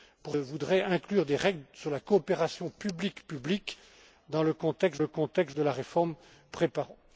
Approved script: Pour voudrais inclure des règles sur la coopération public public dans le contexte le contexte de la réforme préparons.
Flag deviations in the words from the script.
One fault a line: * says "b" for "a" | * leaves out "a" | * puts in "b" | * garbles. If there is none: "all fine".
all fine